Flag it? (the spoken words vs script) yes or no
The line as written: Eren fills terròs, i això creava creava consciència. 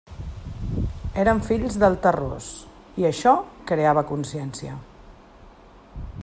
yes